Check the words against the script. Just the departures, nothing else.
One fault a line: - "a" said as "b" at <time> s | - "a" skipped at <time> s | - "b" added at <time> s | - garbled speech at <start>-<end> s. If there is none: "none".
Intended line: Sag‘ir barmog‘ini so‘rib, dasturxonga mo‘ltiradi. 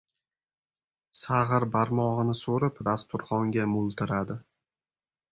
none